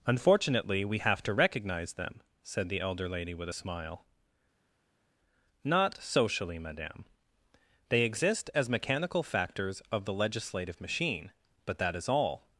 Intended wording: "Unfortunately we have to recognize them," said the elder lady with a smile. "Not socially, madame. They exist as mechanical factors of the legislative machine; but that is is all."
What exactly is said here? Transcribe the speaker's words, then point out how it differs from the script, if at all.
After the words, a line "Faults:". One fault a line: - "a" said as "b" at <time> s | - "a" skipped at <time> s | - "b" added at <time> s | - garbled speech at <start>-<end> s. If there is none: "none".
"Unfortunately we have to recognize them," said the elder lady with a smile. "Not socially, madame. They exist as mechanical factors of the legislative machine; but that is all."
Faults:
- "is" skipped at 12.1 s